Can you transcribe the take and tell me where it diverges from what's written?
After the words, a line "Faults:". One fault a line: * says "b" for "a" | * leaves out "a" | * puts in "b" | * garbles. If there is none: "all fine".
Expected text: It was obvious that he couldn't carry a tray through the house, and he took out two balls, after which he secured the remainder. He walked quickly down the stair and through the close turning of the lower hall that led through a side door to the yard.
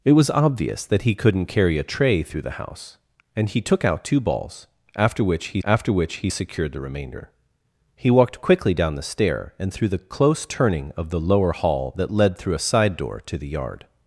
It was obvious that he couldn't carry a tray through the house, and he took out two balls, after which he after which he secured the remainder. He walked quickly down the stair and through the close turning of the lower hall that led through a side door to the yard.
Faults:
* puts in "after which he"